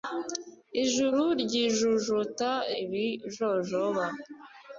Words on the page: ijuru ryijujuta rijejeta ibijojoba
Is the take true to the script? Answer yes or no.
no